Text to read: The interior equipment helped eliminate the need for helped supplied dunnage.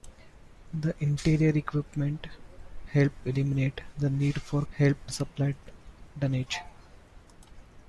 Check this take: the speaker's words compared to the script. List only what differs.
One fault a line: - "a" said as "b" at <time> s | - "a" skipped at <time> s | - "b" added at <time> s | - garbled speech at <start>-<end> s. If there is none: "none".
none